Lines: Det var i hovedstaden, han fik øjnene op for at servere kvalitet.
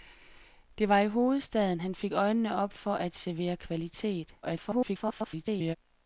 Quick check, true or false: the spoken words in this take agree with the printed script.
false